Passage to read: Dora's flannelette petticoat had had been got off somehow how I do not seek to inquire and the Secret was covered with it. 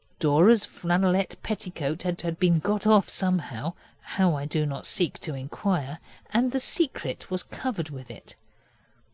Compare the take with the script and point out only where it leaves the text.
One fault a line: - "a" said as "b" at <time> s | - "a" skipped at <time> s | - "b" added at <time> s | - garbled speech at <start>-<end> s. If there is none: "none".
none